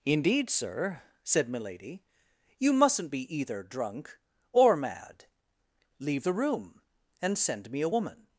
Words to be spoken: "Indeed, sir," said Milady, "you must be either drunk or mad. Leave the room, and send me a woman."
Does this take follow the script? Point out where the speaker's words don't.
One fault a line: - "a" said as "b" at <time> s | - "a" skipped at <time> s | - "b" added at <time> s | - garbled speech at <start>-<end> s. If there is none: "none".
- "must" said as "mustn't" at 2.7 s